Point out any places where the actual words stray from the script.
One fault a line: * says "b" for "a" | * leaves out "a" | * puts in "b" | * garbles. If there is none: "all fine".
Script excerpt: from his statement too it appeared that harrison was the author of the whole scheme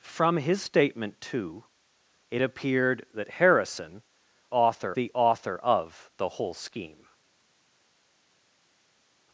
* says "author" for "was"